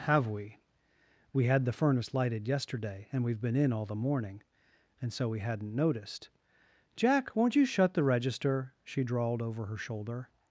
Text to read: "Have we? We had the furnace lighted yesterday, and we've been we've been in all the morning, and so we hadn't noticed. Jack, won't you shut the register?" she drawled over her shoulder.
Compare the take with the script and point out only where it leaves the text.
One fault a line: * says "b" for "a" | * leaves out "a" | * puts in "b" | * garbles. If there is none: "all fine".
* leaves out "we've been"